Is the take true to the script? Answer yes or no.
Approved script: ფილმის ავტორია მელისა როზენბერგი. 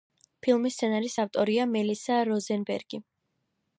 no